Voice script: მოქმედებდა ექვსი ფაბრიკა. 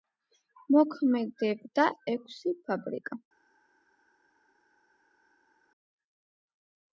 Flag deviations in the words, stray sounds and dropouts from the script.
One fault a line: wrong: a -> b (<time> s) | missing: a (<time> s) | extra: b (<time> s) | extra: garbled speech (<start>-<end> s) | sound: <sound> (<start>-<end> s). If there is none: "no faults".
no faults